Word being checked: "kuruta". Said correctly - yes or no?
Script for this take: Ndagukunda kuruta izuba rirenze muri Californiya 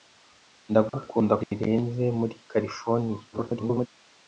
no